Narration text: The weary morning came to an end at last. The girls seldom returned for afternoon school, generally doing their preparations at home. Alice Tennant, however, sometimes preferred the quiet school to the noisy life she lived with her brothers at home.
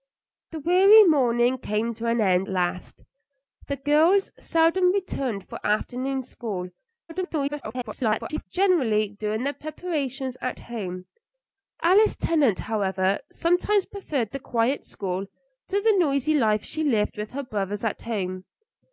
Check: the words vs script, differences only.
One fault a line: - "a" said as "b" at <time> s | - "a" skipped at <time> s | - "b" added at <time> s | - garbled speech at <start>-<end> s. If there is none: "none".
- "at" skipped at 2.5 s
- garbled speech at 7.1-8.4 s